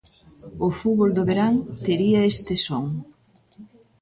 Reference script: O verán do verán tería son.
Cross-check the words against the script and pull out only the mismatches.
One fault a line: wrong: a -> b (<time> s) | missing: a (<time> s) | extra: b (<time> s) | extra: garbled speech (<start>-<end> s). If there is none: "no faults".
wrong: verán -> fútbol (0.8 s)
extra: este (2.3 s)